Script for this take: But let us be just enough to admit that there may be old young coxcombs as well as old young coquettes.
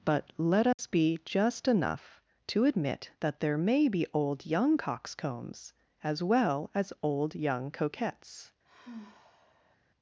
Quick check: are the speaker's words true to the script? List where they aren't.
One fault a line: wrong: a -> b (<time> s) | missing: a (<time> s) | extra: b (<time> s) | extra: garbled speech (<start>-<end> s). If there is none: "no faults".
no faults